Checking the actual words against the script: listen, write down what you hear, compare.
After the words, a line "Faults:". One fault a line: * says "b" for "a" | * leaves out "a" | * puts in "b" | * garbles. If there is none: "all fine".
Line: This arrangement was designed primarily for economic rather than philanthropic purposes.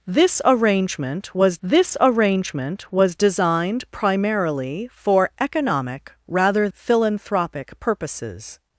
This arrangement was this arrangement was designed primarily for economic rather philanthropic purposes.
Faults:
* puts in "this arrangement was"
* leaves out "than"